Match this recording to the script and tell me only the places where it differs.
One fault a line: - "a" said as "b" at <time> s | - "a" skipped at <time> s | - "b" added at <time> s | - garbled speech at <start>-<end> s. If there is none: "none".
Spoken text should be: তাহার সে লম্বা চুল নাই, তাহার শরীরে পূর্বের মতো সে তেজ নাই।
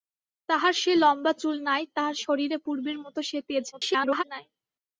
- garbled speech at 3.7-4.2 s